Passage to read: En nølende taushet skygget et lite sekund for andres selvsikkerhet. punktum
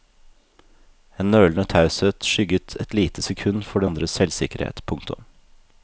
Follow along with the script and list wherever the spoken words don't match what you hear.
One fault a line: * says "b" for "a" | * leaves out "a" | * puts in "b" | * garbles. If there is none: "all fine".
all fine